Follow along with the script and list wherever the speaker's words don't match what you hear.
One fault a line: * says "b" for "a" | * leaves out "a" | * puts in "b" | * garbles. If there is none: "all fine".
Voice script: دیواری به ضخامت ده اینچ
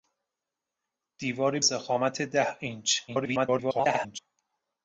* leaves out "به"
* garbles